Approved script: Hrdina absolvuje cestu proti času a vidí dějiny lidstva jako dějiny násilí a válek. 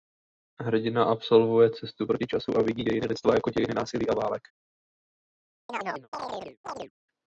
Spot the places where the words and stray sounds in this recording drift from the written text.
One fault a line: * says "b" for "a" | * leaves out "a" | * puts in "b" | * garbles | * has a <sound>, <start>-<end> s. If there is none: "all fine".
* has a chirp, 5.7-6.9 s